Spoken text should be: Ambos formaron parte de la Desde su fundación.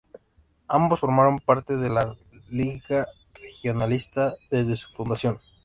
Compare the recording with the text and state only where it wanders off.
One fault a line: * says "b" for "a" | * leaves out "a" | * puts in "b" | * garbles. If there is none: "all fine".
* puts in "Liga Regionalista"